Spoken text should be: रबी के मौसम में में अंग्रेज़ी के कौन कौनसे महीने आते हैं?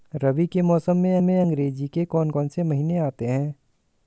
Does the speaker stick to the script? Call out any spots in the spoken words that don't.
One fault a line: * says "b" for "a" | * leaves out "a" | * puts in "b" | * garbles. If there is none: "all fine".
all fine